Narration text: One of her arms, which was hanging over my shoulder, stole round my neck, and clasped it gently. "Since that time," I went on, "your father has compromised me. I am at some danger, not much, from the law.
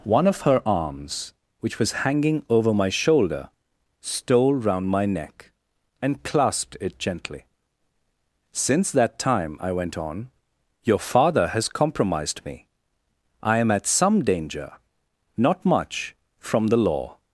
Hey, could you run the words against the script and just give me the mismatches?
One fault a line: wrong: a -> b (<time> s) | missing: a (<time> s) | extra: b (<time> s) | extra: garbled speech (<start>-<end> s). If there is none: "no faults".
no faults